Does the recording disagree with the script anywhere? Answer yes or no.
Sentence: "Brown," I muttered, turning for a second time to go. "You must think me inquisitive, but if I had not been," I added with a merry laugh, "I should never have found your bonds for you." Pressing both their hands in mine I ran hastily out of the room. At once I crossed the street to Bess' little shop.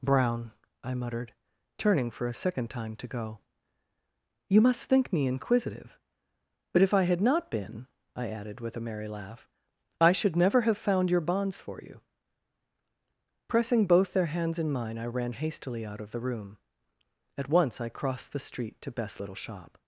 no